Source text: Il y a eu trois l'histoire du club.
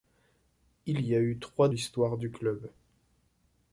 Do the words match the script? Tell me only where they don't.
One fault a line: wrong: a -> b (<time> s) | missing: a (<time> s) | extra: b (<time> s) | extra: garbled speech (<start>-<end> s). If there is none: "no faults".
no faults